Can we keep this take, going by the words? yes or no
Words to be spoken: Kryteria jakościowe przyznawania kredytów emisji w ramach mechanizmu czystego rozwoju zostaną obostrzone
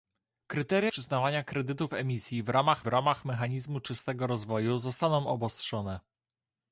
no